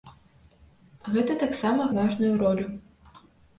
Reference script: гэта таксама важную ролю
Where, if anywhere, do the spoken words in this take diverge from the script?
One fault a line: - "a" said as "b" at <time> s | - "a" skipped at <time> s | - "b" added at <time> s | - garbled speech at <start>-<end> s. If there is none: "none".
none